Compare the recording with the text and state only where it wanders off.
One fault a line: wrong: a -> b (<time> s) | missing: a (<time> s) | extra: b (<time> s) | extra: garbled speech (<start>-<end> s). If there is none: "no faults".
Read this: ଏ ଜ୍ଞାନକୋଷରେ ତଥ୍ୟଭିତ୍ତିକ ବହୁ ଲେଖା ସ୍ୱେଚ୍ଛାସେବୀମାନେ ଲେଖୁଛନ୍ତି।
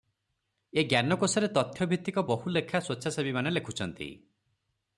no faults